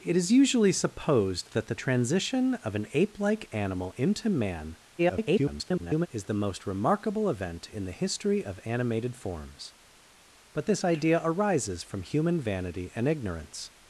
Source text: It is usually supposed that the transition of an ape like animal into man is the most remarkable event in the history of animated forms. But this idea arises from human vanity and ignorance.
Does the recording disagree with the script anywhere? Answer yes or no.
yes